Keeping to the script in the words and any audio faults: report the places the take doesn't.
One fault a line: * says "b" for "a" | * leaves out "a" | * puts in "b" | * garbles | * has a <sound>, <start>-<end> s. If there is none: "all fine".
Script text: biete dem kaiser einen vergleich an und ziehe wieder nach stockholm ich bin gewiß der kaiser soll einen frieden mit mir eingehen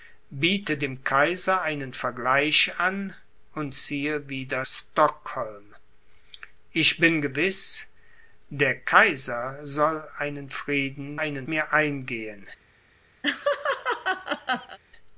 * leaves out "nach"
* says "einen" for "mit"
* has a laugh, 13.2-14.8 s